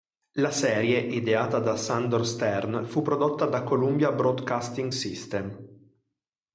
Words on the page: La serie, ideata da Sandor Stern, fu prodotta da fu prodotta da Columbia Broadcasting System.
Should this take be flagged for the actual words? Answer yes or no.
yes